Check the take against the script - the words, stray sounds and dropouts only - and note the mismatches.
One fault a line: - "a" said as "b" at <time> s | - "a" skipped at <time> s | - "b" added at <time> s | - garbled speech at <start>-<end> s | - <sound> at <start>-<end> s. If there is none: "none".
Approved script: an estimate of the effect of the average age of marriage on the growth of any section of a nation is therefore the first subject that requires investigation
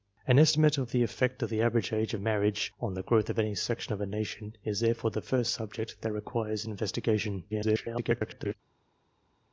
- garbled speech at 7.5-8.5 s